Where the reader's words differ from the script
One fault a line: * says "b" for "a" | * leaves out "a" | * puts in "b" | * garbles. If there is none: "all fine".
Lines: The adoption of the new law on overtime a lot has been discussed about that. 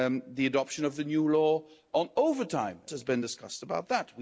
* leaves out "lot"